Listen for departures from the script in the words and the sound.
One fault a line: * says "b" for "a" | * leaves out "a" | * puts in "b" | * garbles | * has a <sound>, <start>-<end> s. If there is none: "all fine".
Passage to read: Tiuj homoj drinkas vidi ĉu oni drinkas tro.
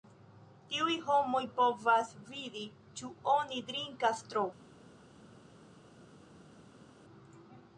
* says "povas" for "drinkas"